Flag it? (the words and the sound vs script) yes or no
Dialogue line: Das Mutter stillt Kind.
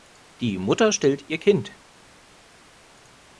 yes